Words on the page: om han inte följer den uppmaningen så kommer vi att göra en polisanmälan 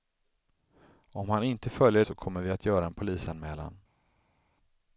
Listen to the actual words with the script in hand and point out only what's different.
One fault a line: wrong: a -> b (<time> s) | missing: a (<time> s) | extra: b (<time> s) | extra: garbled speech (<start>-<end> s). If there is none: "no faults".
missing: den uppmaningen (2.0 s)